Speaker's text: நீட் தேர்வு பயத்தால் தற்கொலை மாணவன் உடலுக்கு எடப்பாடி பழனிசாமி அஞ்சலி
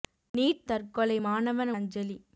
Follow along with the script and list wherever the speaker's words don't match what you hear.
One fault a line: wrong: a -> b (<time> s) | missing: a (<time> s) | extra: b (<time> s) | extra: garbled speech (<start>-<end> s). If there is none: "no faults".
missing: தேர்வு பயத்தால் (0.6 s)
missing: உடலுக்கு எடப்பாடி பழனிசாமி (1.7 s)